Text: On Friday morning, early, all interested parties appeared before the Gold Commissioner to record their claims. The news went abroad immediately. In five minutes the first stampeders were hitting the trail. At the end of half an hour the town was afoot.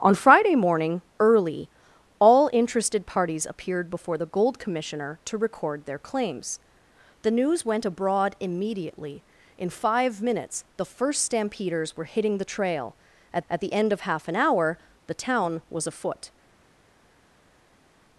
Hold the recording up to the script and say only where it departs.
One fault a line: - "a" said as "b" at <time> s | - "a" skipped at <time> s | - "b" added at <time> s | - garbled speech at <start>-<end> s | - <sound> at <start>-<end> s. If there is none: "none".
- "at" added at 13.5 s